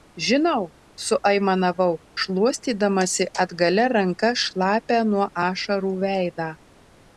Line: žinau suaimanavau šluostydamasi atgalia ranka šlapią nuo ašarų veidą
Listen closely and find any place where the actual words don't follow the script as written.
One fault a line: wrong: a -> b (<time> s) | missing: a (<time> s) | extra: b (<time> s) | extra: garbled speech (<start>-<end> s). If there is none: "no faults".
no faults